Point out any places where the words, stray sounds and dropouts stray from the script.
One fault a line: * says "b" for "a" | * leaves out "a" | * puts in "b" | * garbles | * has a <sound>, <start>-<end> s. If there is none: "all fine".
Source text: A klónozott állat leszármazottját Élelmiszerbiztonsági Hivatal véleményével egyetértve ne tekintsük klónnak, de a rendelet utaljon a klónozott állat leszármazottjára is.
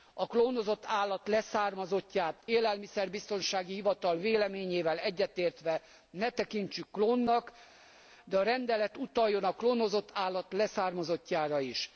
all fine